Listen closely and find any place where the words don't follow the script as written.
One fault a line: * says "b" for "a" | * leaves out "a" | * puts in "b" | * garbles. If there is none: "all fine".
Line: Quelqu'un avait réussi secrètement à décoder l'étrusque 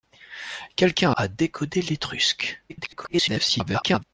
* leaves out "avait réussi secrètement"
* garbles